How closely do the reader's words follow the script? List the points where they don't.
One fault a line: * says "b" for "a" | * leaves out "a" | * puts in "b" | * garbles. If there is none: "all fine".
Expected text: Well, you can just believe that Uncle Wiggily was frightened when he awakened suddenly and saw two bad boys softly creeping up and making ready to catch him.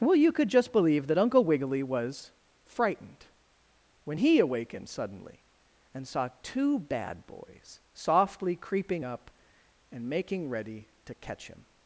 * says "could" for "can"